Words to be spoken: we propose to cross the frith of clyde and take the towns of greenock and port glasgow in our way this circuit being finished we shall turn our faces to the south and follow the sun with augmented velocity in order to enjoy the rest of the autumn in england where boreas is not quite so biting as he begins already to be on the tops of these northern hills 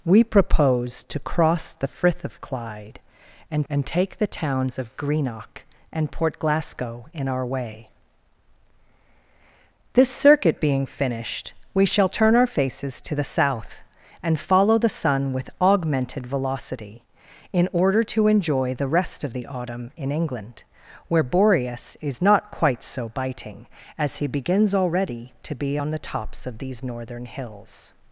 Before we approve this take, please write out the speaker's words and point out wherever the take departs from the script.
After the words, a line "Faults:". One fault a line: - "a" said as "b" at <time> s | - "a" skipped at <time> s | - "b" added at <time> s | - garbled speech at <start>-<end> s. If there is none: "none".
we propose to cross the frith of clyde and and take the towns of greenock and port glasgow in our way this circuit being finished we shall turn our faces to the south and follow the sun with augmented velocity in order to enjoy the rest of the autumn in england where boreas is not quite so biting as he begins already to be on the tops of these northern hills
Faults:
- "and" added at 3.7 s